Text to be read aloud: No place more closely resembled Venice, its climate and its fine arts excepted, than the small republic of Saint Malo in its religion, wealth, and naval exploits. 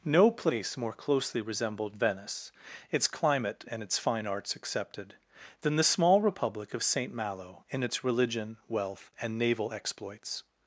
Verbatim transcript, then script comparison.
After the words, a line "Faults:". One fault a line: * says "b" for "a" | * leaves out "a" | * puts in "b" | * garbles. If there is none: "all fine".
No place more closely resembled Venice, its climate and its fine arts excepted, than the small republic of Saint Malo in its religion, wealth, and naval exploits.
Faults:
all fine